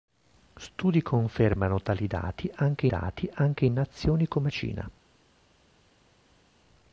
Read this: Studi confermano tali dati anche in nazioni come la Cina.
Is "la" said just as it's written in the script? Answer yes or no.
no